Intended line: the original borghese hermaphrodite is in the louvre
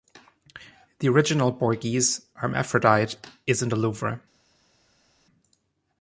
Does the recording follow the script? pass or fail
pass